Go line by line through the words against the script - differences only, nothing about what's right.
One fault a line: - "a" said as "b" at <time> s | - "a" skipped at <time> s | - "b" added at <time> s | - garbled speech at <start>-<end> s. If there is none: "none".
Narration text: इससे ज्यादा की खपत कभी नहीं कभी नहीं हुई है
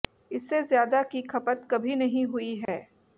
- "कभी नहीं" skipped at 2.2 s